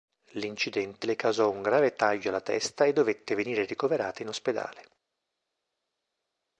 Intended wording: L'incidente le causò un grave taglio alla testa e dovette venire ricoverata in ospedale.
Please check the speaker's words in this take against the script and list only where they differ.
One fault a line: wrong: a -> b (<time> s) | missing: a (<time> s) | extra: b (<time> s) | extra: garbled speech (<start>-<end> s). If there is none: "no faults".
no faults